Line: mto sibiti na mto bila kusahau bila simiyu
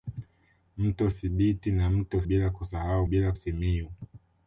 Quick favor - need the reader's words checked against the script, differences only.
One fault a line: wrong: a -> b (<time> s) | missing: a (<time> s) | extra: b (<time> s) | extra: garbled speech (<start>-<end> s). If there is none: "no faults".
no faults